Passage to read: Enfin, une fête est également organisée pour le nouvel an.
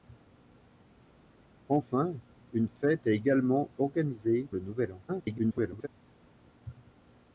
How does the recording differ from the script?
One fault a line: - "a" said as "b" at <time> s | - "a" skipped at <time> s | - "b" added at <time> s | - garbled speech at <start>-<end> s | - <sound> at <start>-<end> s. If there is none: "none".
- "pour" skipped at 4.5 s
- garbled speech at 5.1-5.9 s